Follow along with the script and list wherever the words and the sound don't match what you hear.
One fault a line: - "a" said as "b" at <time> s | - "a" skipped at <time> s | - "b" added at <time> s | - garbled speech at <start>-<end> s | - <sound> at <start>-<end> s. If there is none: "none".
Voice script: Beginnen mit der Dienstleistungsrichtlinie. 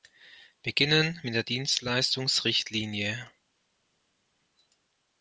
none